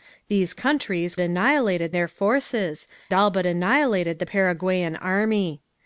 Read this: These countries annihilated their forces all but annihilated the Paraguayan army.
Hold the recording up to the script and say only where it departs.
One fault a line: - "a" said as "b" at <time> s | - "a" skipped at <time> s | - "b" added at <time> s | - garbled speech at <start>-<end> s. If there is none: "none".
none